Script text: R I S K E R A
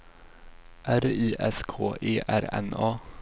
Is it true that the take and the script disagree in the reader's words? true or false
true